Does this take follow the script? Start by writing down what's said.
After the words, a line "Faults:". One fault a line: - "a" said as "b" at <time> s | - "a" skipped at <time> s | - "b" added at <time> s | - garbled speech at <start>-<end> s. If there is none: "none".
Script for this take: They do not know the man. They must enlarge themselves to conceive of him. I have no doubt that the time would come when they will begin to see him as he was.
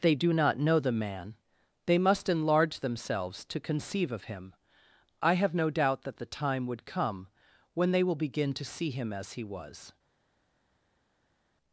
They do not know the man. They must enlarge themselves to conceive of him. I have no doubt that the time would come when they will begin to see him as he was.
Faults:
none